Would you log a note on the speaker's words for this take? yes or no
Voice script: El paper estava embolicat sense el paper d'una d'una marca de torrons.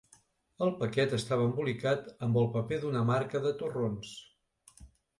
yes